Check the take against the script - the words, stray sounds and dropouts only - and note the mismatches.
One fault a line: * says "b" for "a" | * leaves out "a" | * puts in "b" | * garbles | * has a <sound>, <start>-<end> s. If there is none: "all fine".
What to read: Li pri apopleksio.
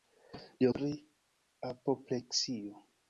all fine